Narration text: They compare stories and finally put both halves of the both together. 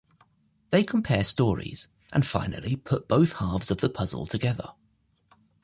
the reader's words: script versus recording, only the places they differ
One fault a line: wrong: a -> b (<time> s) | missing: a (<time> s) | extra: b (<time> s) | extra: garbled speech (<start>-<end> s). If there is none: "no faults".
wrong: both -> puzzle (3.9 s)